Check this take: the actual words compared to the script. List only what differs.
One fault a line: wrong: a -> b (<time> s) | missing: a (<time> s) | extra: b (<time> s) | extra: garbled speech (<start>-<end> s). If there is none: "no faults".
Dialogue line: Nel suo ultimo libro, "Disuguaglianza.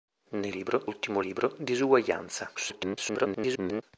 wrong: suo -> libro (0.5 s)
extra: garbled speech (2.5-3.8 s)